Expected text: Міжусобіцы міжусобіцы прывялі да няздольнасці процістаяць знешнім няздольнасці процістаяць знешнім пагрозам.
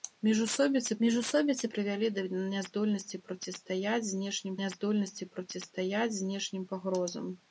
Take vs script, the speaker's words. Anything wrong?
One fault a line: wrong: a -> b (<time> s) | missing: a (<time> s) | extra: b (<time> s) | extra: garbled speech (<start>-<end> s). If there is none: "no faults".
no faults